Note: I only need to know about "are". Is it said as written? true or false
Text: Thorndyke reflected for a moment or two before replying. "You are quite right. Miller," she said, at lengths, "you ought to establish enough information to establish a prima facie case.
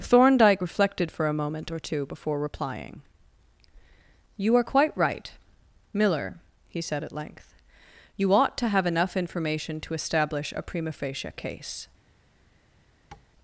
true